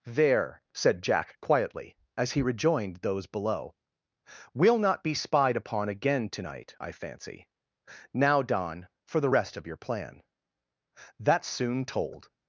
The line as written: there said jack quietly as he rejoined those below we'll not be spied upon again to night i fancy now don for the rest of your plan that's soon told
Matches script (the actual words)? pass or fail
pass